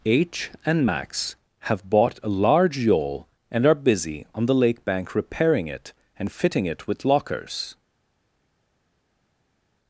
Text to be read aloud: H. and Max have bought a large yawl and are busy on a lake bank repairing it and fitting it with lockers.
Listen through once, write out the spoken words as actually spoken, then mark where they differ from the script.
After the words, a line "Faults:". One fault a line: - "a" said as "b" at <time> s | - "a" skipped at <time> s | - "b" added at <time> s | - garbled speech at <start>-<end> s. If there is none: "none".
H. and Max have bought a large yawl and are busy on the lake bank repairing it and fitting it with lockers.
Faults:
- "a" said as "the" at 4.4 s